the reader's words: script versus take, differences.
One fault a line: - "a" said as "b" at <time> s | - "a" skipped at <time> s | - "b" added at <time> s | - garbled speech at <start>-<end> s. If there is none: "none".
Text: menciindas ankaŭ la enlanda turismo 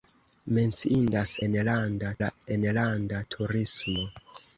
- "ankaŭ" said as "enlanda" at 1.5 s